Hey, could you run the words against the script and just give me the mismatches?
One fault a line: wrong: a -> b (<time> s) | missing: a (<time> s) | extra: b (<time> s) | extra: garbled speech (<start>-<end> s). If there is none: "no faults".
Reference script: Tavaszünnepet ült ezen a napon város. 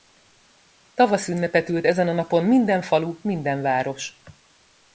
extra: minden falu minden (2.4 s)